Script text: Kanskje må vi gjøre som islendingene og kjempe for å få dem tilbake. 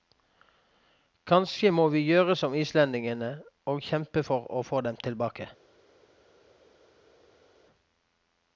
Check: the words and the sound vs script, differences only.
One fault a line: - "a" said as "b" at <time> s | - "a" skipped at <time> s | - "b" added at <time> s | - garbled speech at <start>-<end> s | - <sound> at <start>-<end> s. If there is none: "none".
none